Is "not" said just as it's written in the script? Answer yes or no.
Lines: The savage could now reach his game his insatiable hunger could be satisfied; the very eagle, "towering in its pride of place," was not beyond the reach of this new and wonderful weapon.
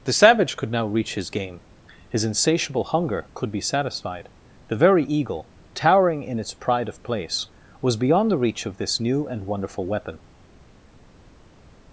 no